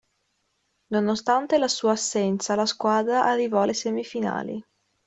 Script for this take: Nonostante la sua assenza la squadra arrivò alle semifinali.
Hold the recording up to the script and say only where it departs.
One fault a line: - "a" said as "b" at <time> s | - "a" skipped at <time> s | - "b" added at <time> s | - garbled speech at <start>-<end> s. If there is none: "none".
none